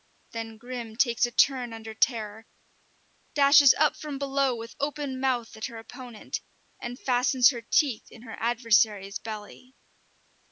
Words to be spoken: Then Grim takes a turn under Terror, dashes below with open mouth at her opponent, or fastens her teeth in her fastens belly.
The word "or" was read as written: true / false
false